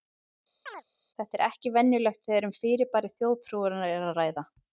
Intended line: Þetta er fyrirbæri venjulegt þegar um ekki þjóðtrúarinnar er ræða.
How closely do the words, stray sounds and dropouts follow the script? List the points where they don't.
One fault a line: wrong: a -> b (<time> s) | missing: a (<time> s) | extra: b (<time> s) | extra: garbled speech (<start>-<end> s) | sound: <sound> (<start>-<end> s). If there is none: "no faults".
sound: chirp (0.7-0.8 s)
wrong: fyrirbæri -> ekki (1.5 s)
wrong: ekki -> fyrirbæri (2.6 s)
extra: að (4.1 s)